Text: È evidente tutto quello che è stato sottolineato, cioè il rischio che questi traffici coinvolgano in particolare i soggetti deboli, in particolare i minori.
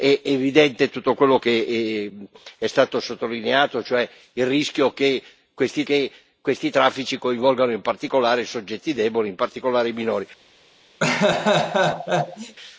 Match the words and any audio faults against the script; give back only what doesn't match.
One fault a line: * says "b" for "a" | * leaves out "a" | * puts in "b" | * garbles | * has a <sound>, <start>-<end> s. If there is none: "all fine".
* puts in "che questi"
* has a laugh, 11.0-12.6 s